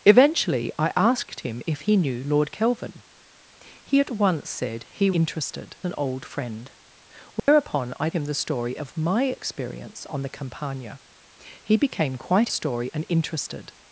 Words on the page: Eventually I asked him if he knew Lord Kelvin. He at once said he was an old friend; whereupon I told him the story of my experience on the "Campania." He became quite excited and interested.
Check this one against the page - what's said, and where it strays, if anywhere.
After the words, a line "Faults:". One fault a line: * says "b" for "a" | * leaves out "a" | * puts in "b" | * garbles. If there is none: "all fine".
Eventually I asked him if he knew Lord Kelvin. He at once said he interested an old friend; whereupon I him the story of my experience on the "Campania." He became quite story and interested.
Faults:
* says "interested" for "was"
* leaves out "told"
* says "story" for "excited"